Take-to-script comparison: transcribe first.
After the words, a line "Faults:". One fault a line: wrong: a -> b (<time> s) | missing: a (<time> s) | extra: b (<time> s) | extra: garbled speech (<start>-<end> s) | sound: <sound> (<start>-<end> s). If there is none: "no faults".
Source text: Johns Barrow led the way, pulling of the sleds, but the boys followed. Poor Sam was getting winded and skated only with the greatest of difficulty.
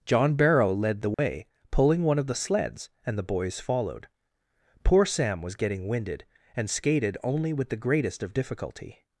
John Barrow led the way, pulling one of the sleds, and the boys followed. Poor Sam was getting winded and skated only with the greatest of difficulty.
Faults:
wrong: Johns -> John (0.1 s)
sound: dropout (1.1-1.2 s)
extra: one (2.0 s)
wrong: but -> and (3.0 s)